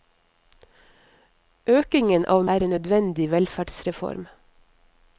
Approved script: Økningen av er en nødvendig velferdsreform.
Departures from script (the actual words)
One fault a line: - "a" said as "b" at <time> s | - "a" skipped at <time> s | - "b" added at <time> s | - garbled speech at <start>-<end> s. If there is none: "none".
none